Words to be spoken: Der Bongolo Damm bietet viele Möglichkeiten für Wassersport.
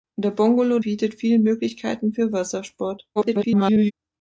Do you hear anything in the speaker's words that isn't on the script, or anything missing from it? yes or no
yes